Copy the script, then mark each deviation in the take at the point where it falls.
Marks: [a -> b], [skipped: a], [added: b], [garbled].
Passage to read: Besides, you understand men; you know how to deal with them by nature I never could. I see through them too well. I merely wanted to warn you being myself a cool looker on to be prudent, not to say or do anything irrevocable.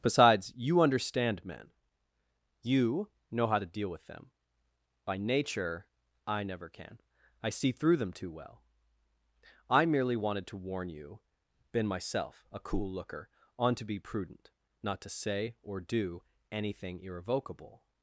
Besides, you understand men; you know how to deal with them by nature I never [could. -> can] I see through them too well. I merely wanted to warn you [being -> been] myself a cool looker on to be prudent, not to say or do anything irrevocable.